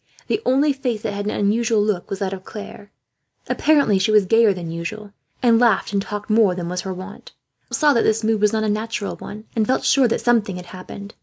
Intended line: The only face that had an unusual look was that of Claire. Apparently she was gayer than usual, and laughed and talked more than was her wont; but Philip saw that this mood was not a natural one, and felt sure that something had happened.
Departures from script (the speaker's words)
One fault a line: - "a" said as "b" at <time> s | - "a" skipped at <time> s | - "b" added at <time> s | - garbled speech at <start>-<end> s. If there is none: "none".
- "but Philip" skipped at 7.3 s